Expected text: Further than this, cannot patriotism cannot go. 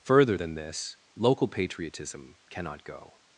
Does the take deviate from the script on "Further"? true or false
false